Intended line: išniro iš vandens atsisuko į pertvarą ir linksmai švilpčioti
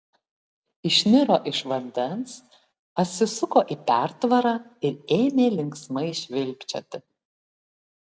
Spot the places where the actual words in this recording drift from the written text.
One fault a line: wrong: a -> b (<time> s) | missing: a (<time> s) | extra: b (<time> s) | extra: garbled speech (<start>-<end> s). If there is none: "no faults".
extra: ėmė (5.2 s)